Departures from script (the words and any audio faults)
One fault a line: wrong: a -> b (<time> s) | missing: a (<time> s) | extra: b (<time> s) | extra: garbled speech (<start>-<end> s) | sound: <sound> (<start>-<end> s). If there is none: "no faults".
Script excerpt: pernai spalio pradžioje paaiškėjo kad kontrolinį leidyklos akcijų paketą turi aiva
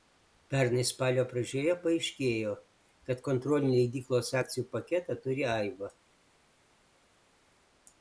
no faults